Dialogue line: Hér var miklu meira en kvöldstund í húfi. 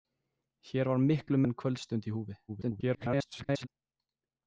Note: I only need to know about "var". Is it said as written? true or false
true